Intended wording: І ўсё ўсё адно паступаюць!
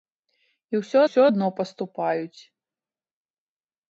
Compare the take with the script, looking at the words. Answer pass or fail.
pass